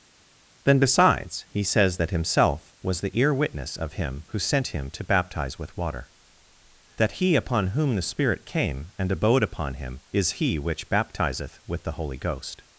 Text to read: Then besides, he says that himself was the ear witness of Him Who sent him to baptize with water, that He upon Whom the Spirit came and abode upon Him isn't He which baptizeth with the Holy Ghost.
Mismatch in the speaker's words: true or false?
true